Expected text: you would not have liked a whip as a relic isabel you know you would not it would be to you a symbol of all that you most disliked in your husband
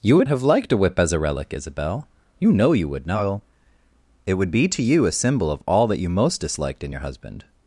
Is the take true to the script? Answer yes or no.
no